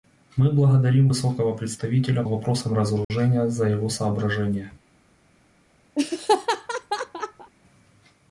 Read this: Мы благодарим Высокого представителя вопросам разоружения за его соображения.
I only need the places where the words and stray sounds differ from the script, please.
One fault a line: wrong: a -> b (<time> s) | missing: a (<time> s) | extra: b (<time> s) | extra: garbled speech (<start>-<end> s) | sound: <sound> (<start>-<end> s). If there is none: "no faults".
sound: dropout (3.0-3.1 s)
sound: laugh (6.0-7.5 s)